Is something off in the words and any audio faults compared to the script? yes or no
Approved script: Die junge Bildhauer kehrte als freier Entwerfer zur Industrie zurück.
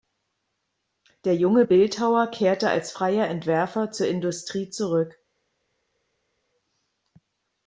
yes